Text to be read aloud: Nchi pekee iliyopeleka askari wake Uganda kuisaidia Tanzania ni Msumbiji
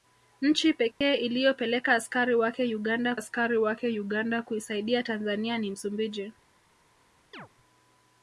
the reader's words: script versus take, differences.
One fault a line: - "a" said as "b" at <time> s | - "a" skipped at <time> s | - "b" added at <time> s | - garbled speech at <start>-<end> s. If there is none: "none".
- "askari wake Uganda" added at 3.1 s